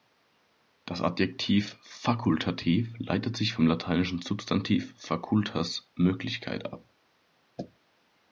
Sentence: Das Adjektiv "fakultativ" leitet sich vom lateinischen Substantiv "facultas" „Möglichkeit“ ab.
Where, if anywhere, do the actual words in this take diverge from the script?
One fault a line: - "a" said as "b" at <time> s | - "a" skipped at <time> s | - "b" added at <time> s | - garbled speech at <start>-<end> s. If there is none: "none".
none